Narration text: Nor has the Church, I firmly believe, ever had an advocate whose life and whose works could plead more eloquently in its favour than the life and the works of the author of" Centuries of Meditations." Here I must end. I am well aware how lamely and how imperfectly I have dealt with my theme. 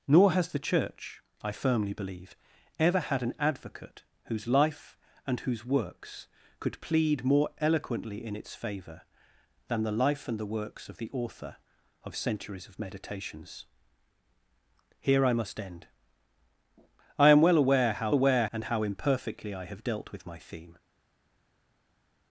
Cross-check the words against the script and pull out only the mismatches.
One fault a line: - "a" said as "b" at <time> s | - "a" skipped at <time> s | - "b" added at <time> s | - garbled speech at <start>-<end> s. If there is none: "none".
- "lamely" said as "aware" at 18.1 s